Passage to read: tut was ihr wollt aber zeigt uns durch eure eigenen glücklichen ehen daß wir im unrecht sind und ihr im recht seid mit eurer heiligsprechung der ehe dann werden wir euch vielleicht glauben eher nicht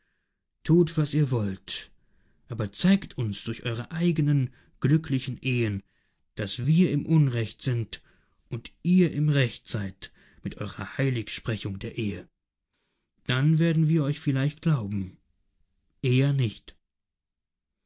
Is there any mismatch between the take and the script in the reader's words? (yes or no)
no